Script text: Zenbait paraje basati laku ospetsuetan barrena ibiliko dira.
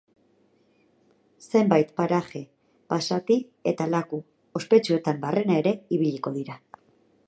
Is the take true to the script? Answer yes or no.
no